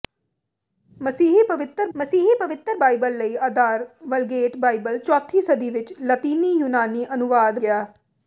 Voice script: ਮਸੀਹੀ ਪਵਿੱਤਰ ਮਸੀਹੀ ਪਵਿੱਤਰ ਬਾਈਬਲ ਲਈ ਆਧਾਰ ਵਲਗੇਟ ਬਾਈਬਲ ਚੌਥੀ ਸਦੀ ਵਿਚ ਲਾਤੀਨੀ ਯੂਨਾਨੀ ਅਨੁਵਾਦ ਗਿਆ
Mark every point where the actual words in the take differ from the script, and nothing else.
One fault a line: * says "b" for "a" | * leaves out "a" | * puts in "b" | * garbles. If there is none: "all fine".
all fine